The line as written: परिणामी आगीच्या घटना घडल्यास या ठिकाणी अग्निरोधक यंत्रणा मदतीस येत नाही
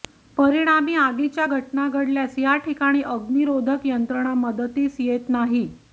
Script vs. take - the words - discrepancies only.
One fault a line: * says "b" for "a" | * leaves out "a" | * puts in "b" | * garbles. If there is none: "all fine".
all fine